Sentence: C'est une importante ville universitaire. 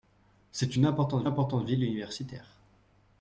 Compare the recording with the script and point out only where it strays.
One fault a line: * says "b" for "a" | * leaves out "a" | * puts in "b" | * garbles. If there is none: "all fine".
* puts in "importante"